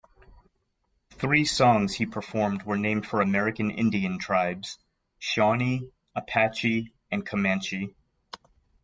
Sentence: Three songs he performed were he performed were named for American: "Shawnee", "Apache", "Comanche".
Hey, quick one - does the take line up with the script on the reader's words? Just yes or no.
no